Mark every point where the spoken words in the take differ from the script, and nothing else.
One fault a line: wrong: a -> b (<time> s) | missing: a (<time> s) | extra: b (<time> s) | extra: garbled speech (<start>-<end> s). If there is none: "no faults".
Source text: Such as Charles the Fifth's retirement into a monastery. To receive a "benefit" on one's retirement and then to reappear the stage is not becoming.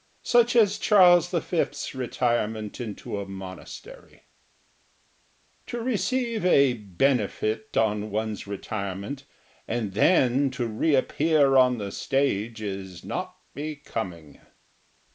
extra: on (11.6 s)